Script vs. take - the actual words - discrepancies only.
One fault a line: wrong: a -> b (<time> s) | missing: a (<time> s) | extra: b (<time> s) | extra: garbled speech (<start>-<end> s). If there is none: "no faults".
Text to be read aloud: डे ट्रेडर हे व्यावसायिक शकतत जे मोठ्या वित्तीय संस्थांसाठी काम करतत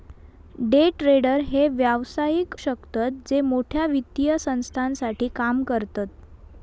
no faults